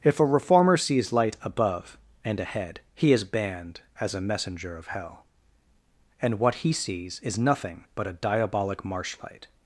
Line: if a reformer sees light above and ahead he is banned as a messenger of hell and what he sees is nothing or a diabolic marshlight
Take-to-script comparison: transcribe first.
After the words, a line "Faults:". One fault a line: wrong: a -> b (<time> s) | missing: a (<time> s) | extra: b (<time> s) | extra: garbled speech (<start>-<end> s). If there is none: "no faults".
if a reformer sees light above and ahead he is banned as a messenger of hell and what he sees is nothing but a diabolic marshlight
Faults:
wrong: or -> but (7.9 s)